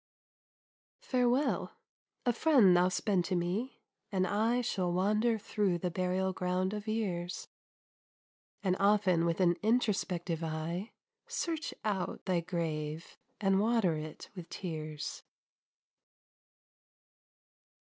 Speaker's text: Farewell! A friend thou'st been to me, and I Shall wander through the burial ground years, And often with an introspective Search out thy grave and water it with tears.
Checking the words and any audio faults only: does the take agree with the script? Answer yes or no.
no